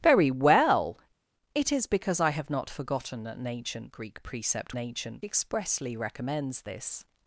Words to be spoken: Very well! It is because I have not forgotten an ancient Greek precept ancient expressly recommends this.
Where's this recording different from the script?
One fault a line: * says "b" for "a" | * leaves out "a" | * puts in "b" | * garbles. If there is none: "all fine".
all fine